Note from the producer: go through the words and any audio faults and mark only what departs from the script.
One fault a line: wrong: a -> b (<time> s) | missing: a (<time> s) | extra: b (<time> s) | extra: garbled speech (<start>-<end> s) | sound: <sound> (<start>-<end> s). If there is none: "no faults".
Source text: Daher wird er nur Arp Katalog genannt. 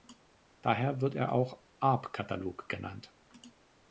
wrong: nur -> auch (1.3 s)